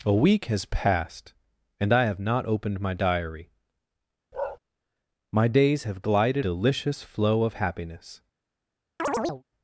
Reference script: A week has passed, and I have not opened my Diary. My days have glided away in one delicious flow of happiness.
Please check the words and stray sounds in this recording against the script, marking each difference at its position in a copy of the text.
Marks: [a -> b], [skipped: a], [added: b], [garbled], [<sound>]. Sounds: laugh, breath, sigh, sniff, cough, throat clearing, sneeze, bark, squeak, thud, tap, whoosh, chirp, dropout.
A week has passed, and I have not opened my Diary. [bark] My days have glided [skipped: away in one] delicious flow of happiness. [chirp]